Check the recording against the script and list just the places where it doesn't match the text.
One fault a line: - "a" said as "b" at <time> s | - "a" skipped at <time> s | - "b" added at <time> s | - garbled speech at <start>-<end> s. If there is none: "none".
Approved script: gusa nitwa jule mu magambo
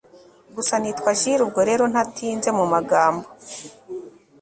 - "ubwo rero ntatinze" added at 1.4 s